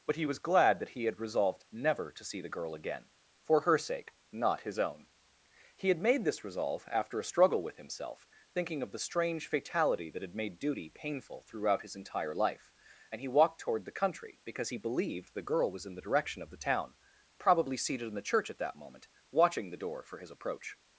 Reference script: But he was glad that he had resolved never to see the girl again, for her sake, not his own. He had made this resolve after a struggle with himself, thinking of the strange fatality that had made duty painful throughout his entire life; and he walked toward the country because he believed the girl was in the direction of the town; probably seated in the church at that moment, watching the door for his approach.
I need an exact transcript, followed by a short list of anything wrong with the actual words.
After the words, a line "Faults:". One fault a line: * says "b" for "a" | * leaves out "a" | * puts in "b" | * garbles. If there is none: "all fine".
But he was glad that he had resolved never to see the girl again, for her sake, not his own. He had made this resolve after a struggle with himself, thinking of the strange fatality that had made duty painful throughout his entire life; and he walked toward the country because he believed the girl was in the direction of the town; probably seated in the church at that moment, watching the door for his approach.
Faults:
all fine